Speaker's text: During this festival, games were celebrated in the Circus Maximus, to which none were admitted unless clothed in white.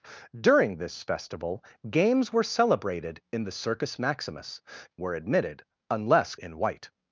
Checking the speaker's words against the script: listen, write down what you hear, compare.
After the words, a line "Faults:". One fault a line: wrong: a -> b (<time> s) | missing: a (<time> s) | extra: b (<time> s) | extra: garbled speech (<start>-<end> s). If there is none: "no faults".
During this festival, games were celebrated in the Circus Maximus, were admitted unless in white.
Faults:
missing: to which none (4.6 s)
missing: clothed (6.3 s)